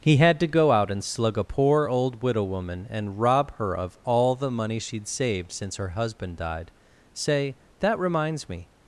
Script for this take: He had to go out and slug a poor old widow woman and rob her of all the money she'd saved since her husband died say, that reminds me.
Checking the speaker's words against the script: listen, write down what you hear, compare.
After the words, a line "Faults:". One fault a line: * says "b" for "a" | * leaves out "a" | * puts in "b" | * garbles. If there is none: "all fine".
He had to go out and slug a poor old widow woman and rob her of all the money she'd saved since her husband died say, that reminds me.
Faults:
all fine